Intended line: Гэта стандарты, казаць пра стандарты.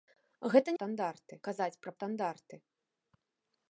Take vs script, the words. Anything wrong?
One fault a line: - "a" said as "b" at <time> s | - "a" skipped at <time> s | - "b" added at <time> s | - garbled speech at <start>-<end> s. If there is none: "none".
none